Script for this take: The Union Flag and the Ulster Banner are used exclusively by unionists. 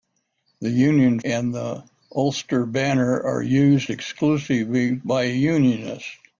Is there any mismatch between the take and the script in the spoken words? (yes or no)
yes